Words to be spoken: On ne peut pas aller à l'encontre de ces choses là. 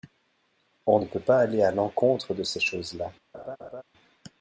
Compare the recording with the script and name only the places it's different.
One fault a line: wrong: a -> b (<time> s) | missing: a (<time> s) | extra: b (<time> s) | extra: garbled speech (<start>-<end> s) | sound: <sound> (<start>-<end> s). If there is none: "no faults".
sound: laugh (3.3-3.8 s)